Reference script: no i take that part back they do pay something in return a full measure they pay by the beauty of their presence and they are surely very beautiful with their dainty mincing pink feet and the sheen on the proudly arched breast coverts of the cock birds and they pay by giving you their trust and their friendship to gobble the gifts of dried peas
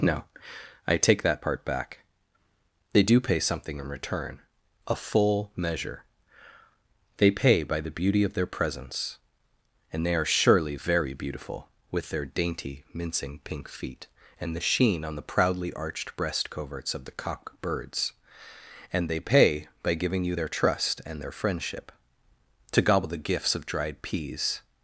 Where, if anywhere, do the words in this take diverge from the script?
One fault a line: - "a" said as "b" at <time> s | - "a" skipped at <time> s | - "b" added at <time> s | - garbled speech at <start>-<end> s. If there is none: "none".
none